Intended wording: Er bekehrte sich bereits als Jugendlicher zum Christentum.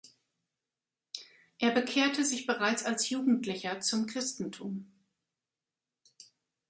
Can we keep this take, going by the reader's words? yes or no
yes